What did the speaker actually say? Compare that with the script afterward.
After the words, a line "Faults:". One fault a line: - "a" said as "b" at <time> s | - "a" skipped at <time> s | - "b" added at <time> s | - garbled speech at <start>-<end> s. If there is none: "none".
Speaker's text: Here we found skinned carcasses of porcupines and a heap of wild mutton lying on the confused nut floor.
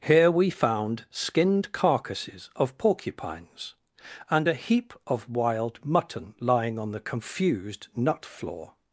Here we found skinned carcasses of porcupines and a heap of wild mutton lying on the confused nut floor.
Faults:
none